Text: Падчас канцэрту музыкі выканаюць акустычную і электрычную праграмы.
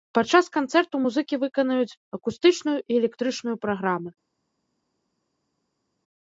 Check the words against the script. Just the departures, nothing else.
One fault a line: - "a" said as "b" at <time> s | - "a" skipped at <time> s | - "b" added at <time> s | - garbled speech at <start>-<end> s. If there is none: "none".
none